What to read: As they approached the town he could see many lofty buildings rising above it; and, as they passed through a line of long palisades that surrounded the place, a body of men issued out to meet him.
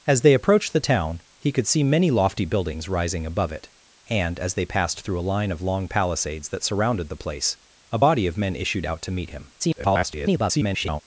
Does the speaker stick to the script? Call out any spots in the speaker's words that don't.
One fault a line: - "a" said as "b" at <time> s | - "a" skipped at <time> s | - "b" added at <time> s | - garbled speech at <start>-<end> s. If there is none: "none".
- garbled speech at 9.6-11.0 s